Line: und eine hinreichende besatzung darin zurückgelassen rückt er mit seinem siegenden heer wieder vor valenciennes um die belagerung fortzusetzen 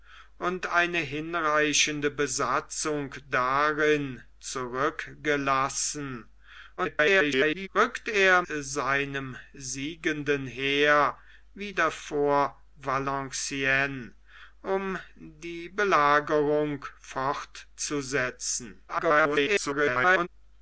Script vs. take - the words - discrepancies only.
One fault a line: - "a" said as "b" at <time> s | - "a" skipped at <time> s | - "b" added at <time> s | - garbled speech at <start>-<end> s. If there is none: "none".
- garbled speech at 6.8-7.7 s
- "mit" skipped at 8.4 s
- garbled speech at 18.9-20.3 s